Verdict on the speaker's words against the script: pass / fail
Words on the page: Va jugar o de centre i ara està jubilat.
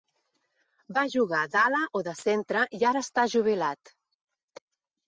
fail